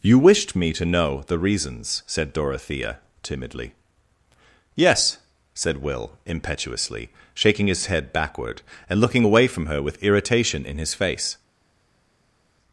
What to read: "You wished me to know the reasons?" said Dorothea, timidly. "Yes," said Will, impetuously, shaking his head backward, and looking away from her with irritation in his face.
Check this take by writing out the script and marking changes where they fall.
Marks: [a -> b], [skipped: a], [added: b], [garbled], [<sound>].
"You wished me to know the reasons?" said Dorothea, timidly. "Yes," said Will, impetuously, shaking his head backward, and looking away from her with irritation in his face.